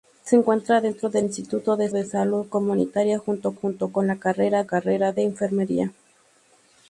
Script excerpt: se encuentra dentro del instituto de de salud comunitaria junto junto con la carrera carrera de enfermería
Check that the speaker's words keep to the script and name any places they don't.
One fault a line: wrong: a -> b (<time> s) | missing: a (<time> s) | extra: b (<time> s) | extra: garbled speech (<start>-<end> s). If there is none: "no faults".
no faults